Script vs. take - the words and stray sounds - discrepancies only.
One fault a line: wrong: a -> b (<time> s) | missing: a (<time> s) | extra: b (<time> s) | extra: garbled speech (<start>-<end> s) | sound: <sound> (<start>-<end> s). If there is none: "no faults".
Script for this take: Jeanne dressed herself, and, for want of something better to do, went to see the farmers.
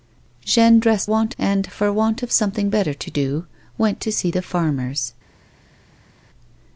wrong: herself -> want (1.1 s)